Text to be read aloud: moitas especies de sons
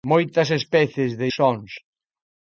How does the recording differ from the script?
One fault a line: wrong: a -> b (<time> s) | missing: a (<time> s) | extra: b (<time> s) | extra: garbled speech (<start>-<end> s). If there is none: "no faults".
no faults